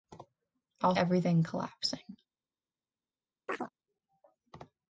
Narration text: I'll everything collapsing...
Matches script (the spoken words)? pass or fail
pass